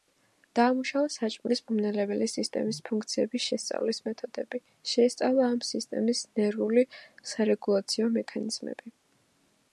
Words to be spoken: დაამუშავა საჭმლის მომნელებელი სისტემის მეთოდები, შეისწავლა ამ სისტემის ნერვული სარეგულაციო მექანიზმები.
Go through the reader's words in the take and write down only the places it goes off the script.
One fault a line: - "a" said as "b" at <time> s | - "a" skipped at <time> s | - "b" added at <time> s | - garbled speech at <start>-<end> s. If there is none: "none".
- "ფუნქციების შესწავლის" added at 2.9 s